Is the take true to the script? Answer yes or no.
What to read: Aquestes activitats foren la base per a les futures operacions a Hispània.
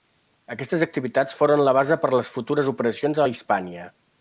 yes